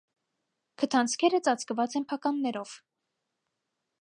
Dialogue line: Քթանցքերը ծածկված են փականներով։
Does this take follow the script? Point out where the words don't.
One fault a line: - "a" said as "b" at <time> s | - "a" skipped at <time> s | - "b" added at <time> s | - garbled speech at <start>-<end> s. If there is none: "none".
none